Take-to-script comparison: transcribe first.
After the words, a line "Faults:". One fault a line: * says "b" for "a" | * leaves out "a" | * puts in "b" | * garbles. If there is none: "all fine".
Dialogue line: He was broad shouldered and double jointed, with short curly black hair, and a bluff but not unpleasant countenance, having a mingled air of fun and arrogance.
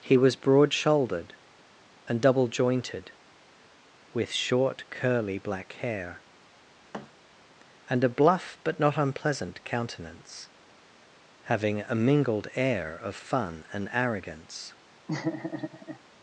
He was broad shouldered and double jointed, with short curly black hair, and a bluff but not unpleasant countenance, having a mingled air of fun and arrogance.
Faults:
all fine